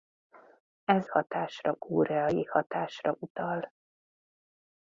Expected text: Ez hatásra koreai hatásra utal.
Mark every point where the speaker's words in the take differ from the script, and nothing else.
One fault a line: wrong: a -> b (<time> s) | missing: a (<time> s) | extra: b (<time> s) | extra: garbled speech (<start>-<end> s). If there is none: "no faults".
no faults